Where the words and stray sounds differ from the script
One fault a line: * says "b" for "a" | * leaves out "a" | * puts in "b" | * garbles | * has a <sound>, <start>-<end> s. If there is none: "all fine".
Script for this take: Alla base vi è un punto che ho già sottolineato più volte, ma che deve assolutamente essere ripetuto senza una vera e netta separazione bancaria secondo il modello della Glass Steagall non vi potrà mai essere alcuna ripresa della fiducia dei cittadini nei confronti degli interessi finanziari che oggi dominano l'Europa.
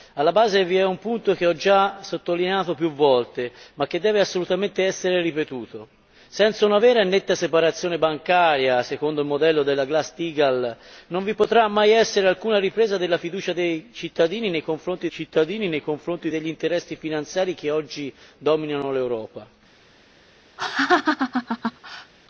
* puts in "cittadini nei confronti"
* has a laugh, 20.6-22.1 s